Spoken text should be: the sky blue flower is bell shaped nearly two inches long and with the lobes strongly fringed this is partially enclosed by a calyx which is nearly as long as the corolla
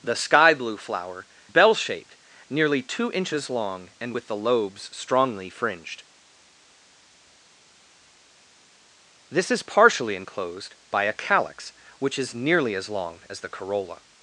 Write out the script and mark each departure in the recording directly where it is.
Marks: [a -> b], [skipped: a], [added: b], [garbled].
the sky blue flower [skipped: is] bell shaped nearly two inches long and with the lobes strongly fringed this is partially enclosed by a calyx which is nearly as long as the corolla